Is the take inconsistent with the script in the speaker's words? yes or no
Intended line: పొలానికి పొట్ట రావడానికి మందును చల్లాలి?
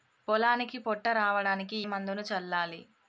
no